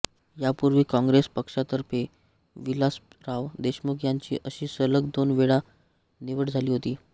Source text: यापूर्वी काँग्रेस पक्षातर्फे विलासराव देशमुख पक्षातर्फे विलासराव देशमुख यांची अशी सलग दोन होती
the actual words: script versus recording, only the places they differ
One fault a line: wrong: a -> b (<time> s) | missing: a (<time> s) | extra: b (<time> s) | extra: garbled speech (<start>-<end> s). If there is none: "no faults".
missing: पक्षातर्फे विलासराव देशमुख (4.0 s)
extra: वेळा निवड झाली (5.3 s)